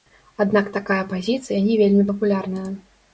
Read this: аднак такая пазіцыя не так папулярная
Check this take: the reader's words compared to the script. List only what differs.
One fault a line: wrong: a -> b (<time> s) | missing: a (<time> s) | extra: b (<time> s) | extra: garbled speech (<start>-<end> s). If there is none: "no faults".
wrong: так -> вельмі (1.8 s)